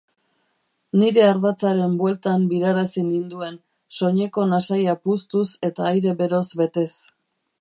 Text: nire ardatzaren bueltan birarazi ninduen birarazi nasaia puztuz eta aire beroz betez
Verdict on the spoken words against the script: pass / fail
fail